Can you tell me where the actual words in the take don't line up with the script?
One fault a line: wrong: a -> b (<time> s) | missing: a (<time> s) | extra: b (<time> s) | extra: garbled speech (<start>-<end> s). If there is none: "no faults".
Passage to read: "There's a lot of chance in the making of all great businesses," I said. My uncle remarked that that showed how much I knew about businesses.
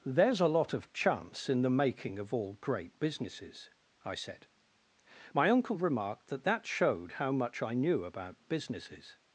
no faults